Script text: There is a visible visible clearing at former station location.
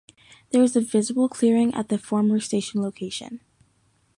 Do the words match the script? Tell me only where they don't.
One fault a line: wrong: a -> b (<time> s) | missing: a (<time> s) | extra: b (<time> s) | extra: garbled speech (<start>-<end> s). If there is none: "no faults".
missing: visible (1.3 s)
extra: the (1.9 s)